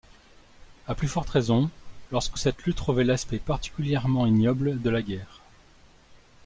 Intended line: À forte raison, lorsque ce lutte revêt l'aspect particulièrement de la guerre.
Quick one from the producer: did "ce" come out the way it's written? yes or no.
no